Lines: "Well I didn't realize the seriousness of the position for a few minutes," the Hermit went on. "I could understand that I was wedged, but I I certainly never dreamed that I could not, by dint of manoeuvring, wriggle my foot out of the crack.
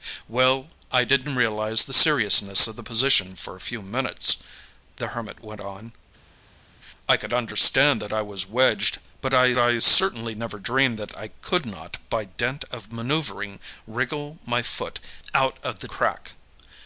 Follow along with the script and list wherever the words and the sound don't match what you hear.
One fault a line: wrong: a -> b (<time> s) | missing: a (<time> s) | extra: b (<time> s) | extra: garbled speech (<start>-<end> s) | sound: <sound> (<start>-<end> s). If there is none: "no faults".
no faults